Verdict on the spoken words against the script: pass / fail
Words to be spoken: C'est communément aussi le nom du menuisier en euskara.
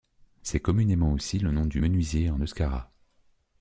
pass